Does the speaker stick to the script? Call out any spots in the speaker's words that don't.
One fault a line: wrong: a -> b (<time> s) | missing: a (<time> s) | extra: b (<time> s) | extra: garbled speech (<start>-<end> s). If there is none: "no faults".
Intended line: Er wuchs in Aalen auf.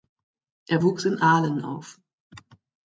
no faults